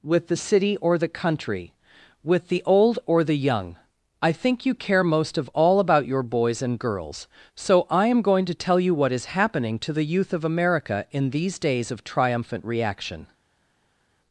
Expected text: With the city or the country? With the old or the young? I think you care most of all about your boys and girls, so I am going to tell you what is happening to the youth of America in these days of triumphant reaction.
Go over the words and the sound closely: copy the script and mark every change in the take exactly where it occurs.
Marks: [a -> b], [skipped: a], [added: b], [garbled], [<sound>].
With the city or the country? With the old or the young? I think you care most of all about your boys and girls, so I am going to tell you what is happening to the youth of America in these days of triumphant reaction.